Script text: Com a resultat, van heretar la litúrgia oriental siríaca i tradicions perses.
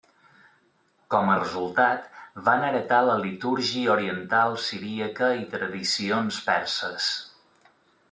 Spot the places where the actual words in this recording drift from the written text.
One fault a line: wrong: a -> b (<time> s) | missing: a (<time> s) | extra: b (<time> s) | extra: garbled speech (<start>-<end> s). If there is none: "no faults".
no faults